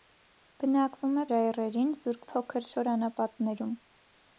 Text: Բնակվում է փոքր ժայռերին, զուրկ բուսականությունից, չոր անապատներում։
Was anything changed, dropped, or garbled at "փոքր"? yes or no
yes